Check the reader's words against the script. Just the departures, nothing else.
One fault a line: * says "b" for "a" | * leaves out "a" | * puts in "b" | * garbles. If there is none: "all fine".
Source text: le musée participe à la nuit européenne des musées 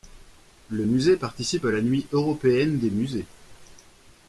all fine